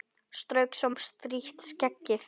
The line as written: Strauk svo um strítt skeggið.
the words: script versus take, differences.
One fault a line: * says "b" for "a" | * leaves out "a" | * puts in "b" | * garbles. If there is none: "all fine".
all fine